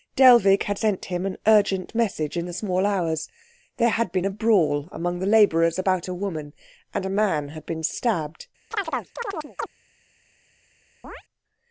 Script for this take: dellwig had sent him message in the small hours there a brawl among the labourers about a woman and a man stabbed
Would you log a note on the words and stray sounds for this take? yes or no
yes